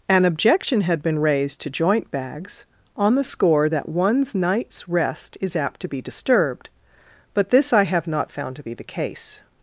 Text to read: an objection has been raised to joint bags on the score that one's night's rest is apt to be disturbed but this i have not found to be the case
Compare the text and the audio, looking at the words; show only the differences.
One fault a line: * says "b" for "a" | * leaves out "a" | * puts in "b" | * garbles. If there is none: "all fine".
* says "had" for "has"